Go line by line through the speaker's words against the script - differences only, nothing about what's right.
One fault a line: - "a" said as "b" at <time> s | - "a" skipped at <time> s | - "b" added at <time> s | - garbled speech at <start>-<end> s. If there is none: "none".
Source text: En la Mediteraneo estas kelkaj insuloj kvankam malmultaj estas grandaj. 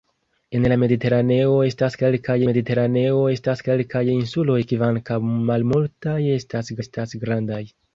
- "Mediteraneo estas kelkaj" added at 2.5 s
- "estas" added at 6.8 s